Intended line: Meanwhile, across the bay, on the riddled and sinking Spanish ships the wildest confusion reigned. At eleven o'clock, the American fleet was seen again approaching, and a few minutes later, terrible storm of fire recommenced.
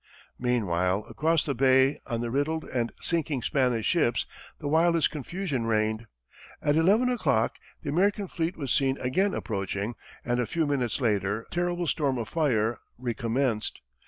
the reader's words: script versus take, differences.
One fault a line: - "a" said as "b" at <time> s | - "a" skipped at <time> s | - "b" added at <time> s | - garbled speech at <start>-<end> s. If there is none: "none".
none